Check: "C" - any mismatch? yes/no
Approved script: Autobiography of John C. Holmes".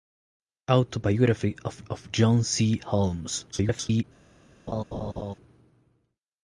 no